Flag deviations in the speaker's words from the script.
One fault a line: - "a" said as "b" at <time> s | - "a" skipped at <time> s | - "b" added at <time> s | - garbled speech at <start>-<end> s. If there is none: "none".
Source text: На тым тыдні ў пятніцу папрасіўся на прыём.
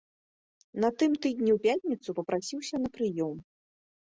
none